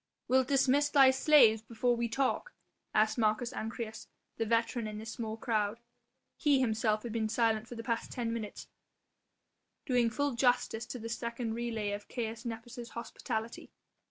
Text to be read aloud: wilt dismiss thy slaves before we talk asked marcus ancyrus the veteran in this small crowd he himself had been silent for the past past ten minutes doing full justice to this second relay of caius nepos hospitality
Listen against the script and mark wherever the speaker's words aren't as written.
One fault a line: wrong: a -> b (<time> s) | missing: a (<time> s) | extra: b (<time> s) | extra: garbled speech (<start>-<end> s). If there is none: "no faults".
missing: past (8.1 s)